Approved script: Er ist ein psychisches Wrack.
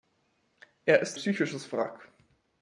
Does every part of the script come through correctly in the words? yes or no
no